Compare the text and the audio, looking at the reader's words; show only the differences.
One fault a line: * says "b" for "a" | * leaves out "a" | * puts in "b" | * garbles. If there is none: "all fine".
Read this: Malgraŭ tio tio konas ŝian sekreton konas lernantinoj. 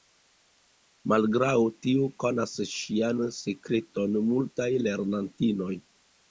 * leaves out "tio"
* says "multaj" for "konas"